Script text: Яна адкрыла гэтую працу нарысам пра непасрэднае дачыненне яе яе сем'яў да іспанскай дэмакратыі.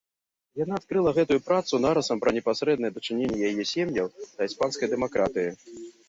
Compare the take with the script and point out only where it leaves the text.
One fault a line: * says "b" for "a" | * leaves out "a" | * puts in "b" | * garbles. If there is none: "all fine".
* leaves out "яе"